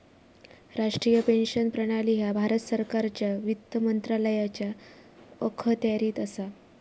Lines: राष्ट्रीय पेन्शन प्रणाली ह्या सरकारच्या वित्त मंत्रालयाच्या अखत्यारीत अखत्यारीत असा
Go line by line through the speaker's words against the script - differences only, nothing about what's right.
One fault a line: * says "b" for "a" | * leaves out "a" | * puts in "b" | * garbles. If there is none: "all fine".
* puts in "भारत"
* leaves out "अखत्यारीत"